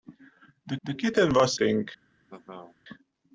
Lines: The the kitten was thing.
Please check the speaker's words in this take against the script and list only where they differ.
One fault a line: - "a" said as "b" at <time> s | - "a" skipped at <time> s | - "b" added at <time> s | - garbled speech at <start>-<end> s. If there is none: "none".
none